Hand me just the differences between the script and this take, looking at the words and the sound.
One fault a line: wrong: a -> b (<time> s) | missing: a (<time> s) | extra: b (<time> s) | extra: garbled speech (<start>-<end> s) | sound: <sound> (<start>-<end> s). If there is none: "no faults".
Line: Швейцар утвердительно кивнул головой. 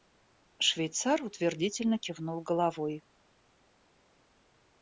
no faults